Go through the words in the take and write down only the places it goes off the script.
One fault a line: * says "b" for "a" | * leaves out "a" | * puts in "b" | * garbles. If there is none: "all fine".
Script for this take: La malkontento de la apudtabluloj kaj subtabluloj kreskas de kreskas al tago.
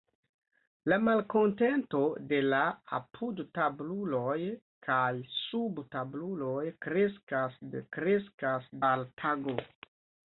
all fine